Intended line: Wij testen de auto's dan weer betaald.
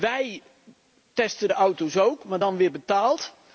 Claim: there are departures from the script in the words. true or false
true